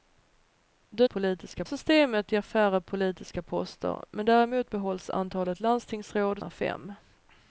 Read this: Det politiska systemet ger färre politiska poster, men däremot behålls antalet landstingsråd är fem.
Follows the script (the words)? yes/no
yes